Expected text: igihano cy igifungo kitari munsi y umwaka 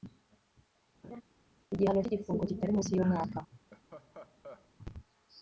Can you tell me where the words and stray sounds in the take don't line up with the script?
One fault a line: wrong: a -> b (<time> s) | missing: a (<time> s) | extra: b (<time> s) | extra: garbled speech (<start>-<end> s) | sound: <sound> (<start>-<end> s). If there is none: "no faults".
sound: laugh (1.0-1.2 s)
sound: laugh (3.5-4.7 s)